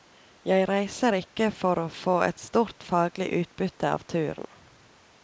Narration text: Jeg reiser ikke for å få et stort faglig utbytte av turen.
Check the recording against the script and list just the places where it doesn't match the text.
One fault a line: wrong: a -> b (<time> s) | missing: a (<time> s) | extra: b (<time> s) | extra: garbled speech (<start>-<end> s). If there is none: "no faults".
no faults